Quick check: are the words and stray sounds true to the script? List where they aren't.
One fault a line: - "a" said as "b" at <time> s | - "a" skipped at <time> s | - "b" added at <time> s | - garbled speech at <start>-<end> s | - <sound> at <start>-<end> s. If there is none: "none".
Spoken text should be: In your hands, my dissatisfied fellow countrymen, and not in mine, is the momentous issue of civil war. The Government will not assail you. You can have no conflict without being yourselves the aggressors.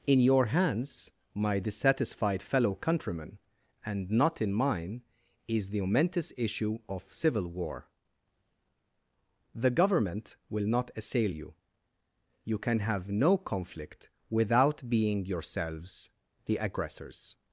none